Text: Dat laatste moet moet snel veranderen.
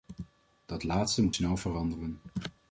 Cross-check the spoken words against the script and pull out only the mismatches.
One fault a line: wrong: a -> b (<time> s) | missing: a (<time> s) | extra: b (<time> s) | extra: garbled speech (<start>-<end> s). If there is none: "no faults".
missing: moet (1.4 s)